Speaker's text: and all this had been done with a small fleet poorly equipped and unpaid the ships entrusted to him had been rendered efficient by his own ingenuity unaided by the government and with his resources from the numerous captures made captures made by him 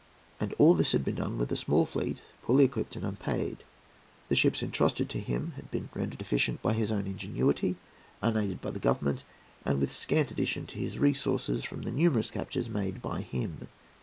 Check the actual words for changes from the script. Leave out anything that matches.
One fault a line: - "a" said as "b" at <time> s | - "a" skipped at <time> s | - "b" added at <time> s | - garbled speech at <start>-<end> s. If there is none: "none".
- "scant addition to" added at 9.9 s
- "captures made" skipped at 13.0 s